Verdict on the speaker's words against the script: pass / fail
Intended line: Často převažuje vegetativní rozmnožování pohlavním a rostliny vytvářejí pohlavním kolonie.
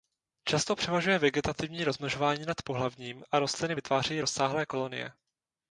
fail